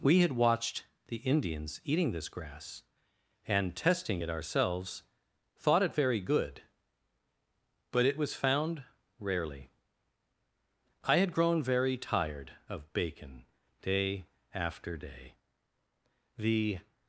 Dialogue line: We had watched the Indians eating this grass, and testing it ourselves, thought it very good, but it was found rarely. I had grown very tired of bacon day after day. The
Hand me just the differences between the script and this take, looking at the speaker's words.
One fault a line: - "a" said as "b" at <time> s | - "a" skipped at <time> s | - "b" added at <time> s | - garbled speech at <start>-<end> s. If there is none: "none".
none